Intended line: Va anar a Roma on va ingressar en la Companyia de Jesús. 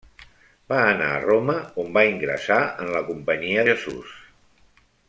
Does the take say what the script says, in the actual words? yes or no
no